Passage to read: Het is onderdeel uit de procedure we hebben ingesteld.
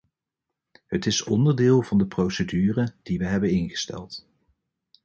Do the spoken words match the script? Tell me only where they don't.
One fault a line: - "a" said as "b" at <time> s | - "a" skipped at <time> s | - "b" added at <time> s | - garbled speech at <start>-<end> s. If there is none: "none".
- "uit" said as "van" at 1.8 s
- "die" added at 3.0 s